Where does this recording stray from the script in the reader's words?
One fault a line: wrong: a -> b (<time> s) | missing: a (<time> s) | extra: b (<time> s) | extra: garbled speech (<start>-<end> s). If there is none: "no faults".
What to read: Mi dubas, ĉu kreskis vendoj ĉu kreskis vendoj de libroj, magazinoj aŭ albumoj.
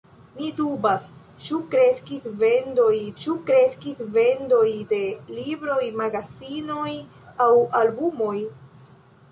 no faults